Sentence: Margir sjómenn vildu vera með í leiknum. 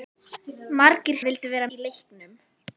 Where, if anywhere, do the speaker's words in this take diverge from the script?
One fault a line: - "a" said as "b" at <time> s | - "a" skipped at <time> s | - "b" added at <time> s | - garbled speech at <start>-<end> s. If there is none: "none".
- "sjómenn" skipped at 1.2 s
- "með" skipped at 1.7 s